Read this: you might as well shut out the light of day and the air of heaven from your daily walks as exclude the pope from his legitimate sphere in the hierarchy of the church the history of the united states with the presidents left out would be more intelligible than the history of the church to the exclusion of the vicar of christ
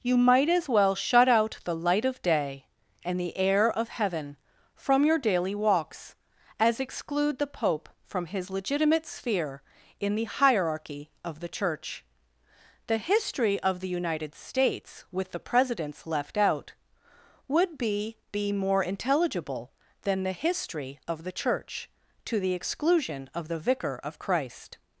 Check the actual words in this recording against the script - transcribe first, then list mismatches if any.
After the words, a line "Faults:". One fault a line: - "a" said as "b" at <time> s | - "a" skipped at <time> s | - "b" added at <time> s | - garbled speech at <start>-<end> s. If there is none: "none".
you might as well shut out the light of day and the air of heaven from your daily walks as exclude the pope from his legitimate sphere in the hierarchy of the church the history of the united states with the presidents left out would be be more intelligible than the history of the church to the exclusion of the vicar of christ
Faults:
- "be" added at 18.3 s